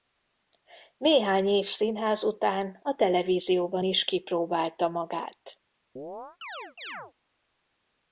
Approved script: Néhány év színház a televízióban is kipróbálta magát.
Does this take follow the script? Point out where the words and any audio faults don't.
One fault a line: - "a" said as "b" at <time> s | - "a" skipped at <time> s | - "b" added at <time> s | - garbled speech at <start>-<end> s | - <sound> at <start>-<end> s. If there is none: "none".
- "után" added at 2.2 s
- chirp at 6.0-7.1 s